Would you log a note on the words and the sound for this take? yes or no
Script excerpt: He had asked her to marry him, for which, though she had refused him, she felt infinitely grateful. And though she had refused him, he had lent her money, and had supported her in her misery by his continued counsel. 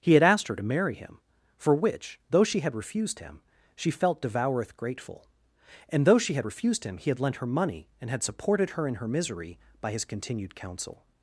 yes